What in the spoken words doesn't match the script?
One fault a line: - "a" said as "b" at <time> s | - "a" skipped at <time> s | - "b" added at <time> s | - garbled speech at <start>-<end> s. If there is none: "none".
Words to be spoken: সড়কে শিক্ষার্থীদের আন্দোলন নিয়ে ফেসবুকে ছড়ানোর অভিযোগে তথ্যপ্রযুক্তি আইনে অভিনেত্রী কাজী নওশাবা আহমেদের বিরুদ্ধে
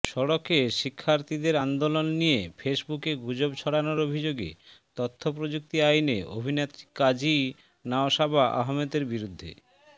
- "গুজব" added at 3.2 s